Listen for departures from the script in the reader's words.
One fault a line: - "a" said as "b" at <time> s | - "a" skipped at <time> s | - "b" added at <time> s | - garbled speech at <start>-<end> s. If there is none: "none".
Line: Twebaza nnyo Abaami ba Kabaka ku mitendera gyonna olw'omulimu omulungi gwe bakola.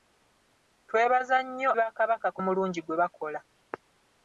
- "Abaami" skipped at 1.7 s
- "mitendera gyonna olw'omulimu" skipped at 2.4 s